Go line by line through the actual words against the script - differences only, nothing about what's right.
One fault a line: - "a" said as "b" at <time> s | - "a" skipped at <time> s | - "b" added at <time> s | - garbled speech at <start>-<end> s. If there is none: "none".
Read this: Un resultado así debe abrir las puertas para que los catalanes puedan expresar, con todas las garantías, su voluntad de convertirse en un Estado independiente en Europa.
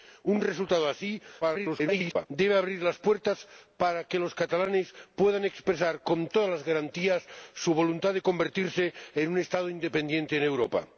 - garbled speech at 1.4-2.3 s